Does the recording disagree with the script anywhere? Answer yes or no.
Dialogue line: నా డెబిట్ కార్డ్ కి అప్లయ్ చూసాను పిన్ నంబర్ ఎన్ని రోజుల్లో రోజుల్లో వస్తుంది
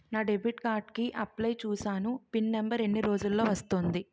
yes